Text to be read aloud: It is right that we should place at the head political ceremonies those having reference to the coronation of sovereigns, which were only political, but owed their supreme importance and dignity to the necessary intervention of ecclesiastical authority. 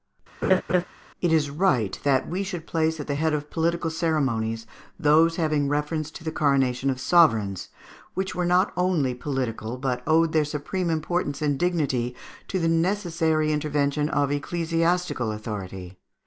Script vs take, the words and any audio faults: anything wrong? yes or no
yes